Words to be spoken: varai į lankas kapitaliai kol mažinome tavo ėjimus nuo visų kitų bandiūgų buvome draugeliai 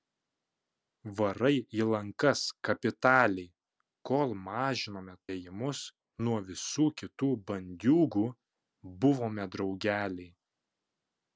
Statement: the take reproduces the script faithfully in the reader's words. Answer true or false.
false